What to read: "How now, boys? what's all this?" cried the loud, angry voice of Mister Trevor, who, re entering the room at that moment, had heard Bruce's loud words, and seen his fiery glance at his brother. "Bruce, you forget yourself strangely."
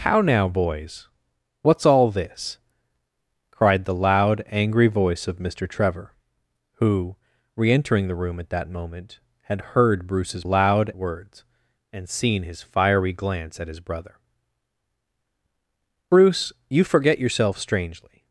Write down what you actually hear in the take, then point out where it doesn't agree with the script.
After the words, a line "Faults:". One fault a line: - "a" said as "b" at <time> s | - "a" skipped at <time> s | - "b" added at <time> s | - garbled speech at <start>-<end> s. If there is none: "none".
"How now, boys? what's all this?" cried the loud, angry voice of Mister Trevor, who, re entering the room at that moment, had heard Bruce's loud words, and seen his fiery glance at his brother. "Bruce, you forget yourself strangely."
Faults:
none